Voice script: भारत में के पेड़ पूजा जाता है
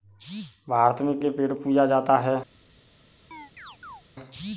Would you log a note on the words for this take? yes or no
no